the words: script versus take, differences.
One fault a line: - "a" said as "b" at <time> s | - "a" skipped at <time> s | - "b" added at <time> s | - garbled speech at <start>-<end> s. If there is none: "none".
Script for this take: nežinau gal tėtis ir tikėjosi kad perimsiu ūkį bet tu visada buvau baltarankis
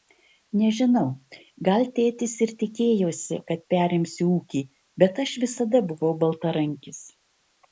- "tu" said as "aš" at 5.3 s